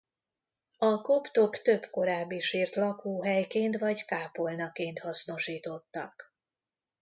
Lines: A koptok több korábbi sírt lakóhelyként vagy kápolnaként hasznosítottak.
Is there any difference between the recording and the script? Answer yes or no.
no